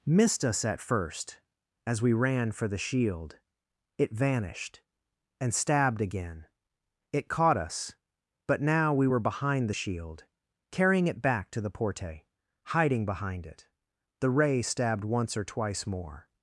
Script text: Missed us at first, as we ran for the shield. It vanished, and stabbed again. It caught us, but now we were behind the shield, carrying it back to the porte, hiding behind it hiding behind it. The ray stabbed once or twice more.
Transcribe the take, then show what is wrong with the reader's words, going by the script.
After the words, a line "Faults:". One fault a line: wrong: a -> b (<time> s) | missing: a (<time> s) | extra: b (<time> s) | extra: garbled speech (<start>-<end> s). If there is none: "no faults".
Missed us at first, as we ran for the shield. It vanished, and stabbed again. It caught us, but now we were behind the shield, carrying it back to the porte, hiding behind it. The ray stabbed once or twice more.
Faults:
missing: hiding behind it (13.7 s)